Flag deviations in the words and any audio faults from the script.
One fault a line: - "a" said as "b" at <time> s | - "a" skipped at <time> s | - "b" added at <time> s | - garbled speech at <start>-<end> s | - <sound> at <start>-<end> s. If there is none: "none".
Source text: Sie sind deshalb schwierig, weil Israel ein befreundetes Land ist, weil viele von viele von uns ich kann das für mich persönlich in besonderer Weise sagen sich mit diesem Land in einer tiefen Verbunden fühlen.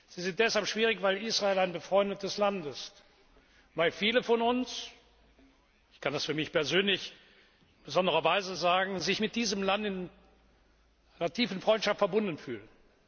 - "viele von" skipped at 4.4 s
- "Freundschaft" added at 11.6 s